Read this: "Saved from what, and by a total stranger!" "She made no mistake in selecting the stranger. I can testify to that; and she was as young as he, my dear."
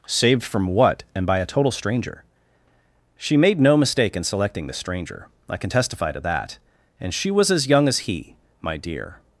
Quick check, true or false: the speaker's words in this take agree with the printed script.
true